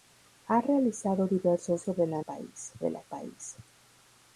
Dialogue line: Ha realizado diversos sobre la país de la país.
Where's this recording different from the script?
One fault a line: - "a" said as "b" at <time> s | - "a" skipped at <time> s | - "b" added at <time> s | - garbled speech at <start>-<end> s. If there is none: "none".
none